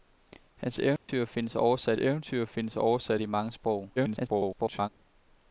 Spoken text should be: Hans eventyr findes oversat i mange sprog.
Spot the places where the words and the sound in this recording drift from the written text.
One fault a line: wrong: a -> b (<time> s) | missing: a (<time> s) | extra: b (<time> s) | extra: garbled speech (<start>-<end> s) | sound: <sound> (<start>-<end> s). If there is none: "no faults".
sound: dropout (1.0-1.1 s)
extra: eventyr findes oversat (2.0 s)
extra: garbled speech (4.0-4.9 s)